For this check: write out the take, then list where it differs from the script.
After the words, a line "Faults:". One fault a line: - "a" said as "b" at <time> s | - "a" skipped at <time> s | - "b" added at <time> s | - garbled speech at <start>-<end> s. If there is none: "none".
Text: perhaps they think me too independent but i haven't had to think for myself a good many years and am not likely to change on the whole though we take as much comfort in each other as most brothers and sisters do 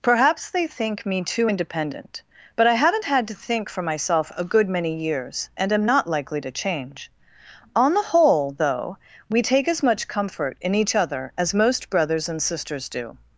perhaps they think me too independent but i haven't had to think for myself a good many years and am not likely to change on the whole though we take as much comfort in each other as most brothers and sisters do
Faults:
none